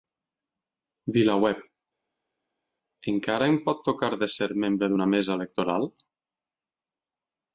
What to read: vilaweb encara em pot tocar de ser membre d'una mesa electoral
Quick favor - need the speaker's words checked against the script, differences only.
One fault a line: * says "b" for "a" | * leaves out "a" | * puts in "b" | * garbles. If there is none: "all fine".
all fine